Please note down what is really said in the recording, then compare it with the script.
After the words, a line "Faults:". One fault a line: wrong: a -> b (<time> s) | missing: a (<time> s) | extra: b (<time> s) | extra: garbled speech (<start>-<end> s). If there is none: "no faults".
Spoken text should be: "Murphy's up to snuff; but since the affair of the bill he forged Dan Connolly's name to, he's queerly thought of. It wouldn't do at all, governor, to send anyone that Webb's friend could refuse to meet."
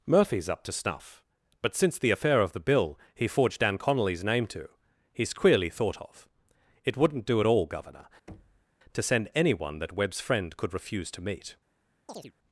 "Murphy's up to snuff; but since the affair of the bill he forged Dan Connolly's name to, he's queerly thought of. It wouldn't do at all, governor, to send anyone that Webb's friend could refuse to meet."
Faults:
no faults